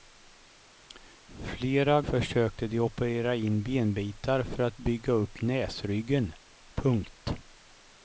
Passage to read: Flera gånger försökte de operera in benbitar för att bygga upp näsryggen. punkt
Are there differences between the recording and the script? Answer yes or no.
yes